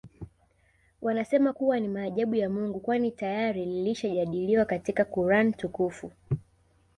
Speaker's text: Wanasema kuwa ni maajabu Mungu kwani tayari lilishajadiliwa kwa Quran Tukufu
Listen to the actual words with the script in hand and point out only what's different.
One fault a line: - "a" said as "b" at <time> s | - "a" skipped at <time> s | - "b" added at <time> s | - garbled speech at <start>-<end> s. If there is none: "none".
- "ya" added at 2.3 s
- "kwa" said as "katika" at 4.6 s